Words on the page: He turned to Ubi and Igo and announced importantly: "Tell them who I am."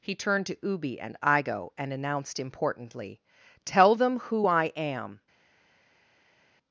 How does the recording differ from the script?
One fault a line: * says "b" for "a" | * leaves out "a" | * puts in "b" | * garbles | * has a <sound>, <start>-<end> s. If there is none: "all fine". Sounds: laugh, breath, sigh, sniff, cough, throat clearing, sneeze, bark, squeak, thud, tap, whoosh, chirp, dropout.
all fine